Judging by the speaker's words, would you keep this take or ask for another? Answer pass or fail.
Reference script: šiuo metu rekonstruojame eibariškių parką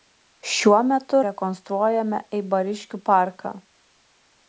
pass